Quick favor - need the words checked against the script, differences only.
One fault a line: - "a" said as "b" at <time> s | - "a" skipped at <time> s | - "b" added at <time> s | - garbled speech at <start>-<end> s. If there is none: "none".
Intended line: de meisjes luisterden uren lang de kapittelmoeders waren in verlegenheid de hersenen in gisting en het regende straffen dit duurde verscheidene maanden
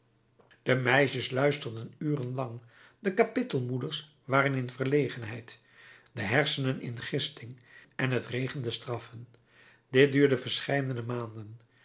none